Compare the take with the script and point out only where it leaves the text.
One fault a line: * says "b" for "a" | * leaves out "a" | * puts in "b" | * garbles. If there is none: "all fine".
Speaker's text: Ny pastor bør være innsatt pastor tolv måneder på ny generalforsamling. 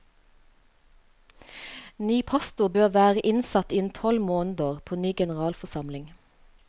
* says "innen" for "pastor"